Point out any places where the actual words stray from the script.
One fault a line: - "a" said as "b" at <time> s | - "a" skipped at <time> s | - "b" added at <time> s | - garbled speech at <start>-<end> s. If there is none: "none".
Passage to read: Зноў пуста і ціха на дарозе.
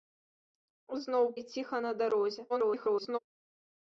- "пуста" skipped at 1.2 s
- garbled speech at 2.5-3.2 s